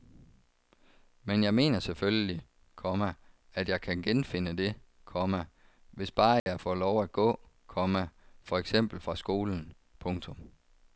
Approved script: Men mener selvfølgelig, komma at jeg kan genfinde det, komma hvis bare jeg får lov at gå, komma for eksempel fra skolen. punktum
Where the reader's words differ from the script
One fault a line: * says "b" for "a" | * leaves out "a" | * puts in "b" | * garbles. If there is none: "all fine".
* puts in "jeg"